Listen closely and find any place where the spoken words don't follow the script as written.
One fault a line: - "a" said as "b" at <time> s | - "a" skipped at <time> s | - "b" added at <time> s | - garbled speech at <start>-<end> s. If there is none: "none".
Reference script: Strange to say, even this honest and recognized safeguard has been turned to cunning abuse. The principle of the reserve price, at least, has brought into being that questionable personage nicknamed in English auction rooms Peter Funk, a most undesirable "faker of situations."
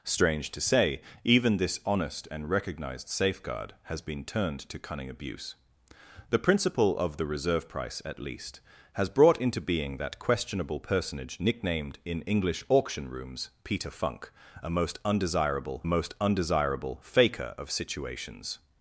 - "most undesirable" added at 15.8 s